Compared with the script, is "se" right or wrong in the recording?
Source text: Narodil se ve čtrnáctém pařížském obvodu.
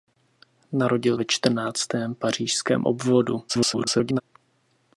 wrong